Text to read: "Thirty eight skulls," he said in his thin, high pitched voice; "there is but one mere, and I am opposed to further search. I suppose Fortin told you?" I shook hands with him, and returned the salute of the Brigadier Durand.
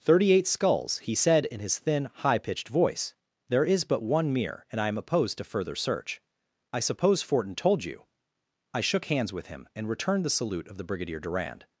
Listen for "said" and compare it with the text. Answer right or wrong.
right